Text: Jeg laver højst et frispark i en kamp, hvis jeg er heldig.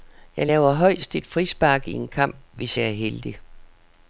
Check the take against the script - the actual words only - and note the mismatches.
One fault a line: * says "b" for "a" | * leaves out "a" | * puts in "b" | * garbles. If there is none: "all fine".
all fine